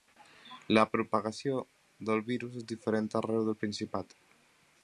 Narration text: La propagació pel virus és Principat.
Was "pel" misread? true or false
true